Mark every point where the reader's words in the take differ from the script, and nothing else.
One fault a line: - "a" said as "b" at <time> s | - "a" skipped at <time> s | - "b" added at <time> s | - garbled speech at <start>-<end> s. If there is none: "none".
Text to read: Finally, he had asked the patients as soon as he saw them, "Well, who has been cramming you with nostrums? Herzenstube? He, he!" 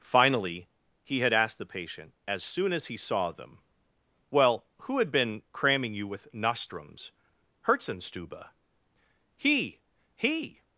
- "patients" said as "patient" at 1.6 s
- "has" said as "had" at 5.0 s